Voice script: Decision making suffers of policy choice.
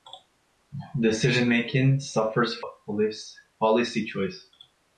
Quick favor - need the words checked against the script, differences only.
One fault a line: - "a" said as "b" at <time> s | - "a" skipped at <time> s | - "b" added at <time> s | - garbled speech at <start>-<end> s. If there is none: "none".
none